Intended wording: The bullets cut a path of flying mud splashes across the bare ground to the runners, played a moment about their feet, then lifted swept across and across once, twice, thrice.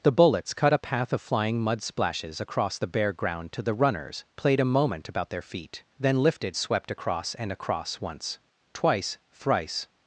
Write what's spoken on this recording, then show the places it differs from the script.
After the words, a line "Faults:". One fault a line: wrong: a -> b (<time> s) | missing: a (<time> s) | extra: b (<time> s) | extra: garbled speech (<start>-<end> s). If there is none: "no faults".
The bullets cut a path of flying mud splashes across the bare ground to the runners, played a moment about their feet, then lifted swept across and across once, twice, thrice.
Faults:
no faults